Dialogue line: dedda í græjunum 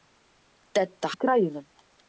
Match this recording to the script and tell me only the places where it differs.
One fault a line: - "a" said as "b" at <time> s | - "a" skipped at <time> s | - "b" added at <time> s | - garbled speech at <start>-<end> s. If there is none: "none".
none